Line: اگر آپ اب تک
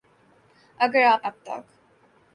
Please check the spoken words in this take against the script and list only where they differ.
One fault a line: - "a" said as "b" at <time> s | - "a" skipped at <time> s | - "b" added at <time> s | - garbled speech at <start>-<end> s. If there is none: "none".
none